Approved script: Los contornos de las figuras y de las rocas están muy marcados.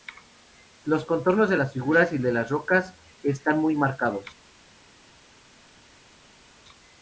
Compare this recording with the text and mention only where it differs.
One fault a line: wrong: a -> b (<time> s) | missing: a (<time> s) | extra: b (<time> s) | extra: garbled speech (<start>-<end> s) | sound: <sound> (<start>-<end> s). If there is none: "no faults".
no faults